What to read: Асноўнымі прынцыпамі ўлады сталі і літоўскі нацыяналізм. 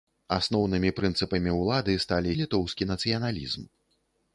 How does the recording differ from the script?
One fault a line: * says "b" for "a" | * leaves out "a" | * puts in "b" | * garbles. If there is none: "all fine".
all fine